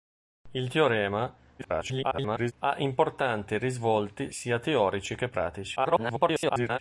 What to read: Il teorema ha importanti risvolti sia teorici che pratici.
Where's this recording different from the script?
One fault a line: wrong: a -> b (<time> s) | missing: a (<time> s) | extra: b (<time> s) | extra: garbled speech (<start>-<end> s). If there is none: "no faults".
extra: garbled speech (1.6-2.5 s)
extra: garbled speech (5.8-6.8 s)